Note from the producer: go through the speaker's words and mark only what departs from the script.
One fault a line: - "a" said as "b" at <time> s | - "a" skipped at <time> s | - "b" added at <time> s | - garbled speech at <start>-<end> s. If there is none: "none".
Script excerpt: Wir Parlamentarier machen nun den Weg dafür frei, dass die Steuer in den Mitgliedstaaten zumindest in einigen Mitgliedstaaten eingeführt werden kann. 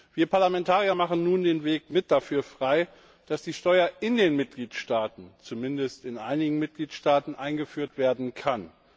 none